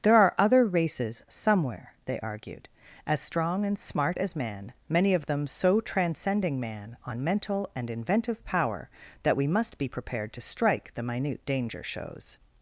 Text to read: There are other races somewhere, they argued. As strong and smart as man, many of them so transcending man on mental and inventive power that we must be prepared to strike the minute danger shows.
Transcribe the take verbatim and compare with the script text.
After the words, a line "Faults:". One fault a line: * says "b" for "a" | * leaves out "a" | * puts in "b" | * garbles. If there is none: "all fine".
There are other races somewhere, they argued. As strong and smart as man, many of them so transcending man on mental and inventive power that we must be prepared to strike the minute danger shows.
Faults:
all fine